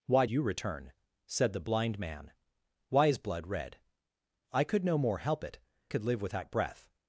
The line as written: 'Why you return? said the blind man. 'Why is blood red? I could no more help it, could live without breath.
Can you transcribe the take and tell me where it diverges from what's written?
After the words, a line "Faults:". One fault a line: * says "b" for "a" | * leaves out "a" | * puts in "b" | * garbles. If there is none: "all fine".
'Why you return? said the blind man. 'Why is blood red? I could no more help it, could live without breath.
Faults:
all fine